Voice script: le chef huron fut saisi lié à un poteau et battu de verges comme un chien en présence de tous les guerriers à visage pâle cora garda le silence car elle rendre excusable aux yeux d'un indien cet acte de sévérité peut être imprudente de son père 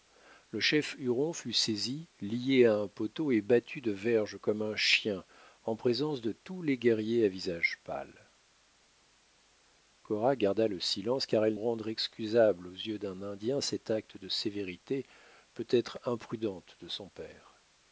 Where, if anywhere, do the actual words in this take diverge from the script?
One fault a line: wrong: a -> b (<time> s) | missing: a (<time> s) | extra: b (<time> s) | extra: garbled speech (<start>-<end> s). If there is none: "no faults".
no faults